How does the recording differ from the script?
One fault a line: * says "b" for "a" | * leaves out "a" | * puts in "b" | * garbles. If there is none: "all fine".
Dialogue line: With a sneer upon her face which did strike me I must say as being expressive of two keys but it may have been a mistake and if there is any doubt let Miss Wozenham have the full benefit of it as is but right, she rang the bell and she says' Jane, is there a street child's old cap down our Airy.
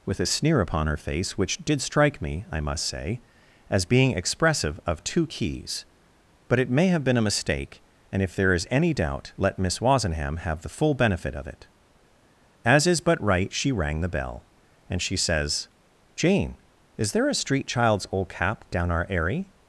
all fine